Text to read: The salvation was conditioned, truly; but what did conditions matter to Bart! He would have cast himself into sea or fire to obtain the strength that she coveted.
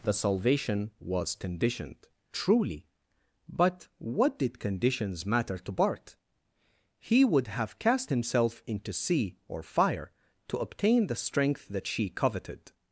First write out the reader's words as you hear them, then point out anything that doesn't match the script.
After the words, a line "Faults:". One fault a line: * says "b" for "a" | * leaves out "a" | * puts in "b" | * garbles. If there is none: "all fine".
The salvation was conditioned, truly; but what did conditions matter to Bart! He would have cast himself into sea or fire to obtain the strength that she coveted.
Faults:
all fine